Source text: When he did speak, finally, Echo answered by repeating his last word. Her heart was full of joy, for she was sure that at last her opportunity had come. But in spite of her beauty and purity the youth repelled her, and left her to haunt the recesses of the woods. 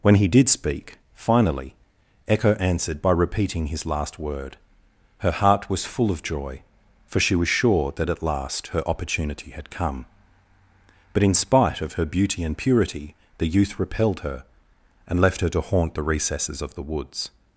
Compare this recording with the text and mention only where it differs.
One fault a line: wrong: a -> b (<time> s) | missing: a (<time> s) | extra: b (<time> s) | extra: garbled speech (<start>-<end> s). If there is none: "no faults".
no faults